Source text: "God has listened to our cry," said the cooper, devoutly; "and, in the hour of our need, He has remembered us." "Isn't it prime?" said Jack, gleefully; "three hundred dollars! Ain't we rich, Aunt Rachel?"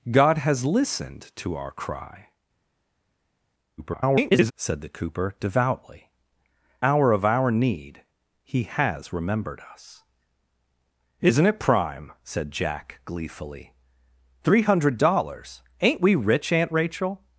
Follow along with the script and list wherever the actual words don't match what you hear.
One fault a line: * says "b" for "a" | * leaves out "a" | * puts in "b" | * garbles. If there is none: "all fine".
* garbles
* leaves out "and in the"